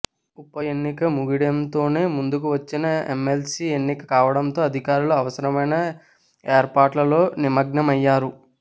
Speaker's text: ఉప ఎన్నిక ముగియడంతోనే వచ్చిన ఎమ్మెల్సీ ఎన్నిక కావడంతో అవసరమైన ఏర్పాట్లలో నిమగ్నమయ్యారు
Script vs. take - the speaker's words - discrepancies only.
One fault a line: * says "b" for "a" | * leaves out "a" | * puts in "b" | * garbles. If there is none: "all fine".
* puts in "ముందుకు"
* puts in "అధికారులు"